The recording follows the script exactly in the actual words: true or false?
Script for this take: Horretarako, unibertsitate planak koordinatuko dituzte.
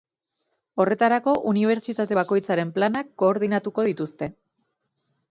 false